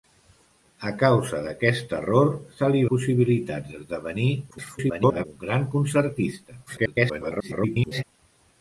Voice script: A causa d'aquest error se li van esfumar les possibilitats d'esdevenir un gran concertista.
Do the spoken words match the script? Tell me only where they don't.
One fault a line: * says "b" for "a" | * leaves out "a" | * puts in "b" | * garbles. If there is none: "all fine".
* leaves out "van esfumar les"
* garbles
* garbles